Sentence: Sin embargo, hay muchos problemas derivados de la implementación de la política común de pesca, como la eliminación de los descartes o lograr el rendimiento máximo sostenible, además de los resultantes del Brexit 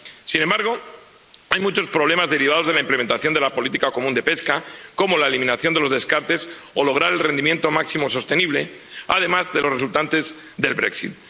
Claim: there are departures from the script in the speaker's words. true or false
false